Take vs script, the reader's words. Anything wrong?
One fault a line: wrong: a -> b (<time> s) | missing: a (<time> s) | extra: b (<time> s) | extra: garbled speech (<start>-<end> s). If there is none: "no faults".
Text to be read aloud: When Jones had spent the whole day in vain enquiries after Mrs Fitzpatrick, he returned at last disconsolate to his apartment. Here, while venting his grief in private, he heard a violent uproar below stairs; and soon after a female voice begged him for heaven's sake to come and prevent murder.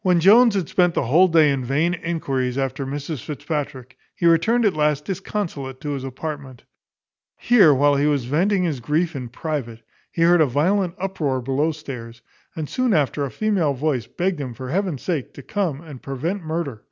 extra: he was (8.0 s)